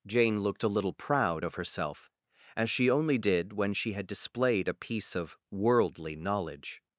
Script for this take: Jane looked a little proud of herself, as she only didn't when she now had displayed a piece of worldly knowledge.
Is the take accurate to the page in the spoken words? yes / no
no